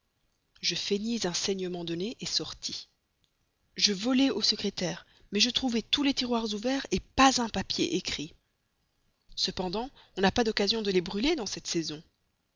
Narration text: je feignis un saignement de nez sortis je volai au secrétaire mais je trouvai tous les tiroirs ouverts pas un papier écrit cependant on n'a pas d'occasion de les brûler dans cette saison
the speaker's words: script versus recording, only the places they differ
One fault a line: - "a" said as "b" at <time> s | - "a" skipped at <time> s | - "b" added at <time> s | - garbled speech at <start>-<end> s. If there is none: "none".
none